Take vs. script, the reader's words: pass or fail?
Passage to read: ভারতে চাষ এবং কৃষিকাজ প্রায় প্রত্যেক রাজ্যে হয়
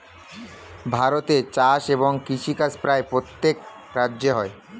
pass